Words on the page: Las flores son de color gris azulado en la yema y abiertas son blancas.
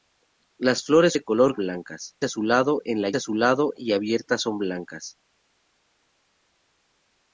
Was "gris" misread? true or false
true